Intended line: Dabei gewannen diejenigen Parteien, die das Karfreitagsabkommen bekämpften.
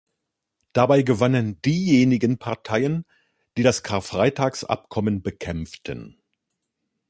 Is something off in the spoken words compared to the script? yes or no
no